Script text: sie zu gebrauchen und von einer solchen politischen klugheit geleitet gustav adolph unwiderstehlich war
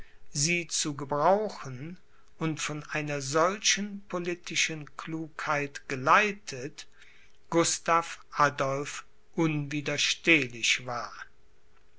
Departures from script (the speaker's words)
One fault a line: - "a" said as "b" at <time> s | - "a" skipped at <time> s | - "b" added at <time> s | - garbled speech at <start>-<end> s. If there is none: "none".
none